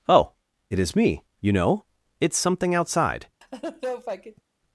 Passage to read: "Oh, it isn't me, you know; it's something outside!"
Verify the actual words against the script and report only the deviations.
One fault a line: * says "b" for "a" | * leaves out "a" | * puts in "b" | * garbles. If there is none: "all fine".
* says "is" for "isn't"